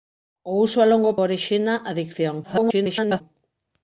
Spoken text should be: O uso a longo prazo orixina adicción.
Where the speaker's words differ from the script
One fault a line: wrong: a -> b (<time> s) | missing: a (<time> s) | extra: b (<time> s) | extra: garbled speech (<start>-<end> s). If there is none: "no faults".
missing: prazo (1.1 s)
extra: garbled speech (2.4-3.2 s)